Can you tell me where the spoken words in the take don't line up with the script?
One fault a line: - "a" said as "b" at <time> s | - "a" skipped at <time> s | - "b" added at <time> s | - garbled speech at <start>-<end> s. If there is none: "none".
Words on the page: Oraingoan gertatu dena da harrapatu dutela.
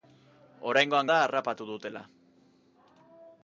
- "gertatu dena" skipped at 1.1 s